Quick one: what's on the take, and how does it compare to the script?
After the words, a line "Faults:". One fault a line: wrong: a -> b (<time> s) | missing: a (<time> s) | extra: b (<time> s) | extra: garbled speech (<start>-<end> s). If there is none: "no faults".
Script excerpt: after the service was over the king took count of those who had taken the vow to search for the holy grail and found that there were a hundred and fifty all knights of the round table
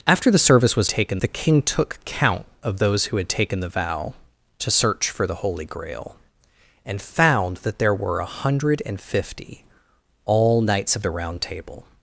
after the service was taken the king took count of those who had taken the vow to search for the holy grail and found that there were a hundred and fifty all knights of the round table
Faults:
wrong: over -> taken (0.9 s)